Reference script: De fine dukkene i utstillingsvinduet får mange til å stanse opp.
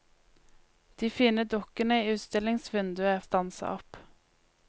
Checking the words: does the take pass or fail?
fail